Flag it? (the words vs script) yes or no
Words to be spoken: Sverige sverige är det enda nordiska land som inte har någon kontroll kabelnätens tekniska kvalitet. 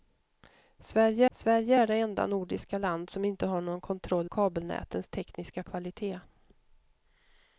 no